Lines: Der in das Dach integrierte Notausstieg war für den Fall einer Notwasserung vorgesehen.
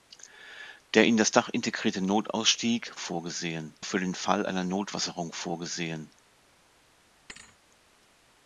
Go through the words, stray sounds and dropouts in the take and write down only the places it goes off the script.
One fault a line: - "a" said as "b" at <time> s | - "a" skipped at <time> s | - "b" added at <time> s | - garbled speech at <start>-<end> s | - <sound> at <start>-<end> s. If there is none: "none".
- "war" said as "vorgesehen" at 3.0 s
- thud at 7.3-7.6 s